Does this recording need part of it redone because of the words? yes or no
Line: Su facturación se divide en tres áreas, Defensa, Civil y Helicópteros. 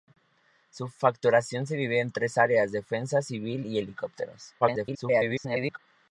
yes